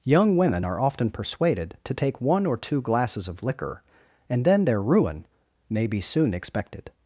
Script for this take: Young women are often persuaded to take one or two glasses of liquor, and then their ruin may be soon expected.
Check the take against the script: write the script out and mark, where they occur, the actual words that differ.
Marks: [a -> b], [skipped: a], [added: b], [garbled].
Young women are often persuaded to take one or two glasses of liquor, and then their ruin may be soon expected.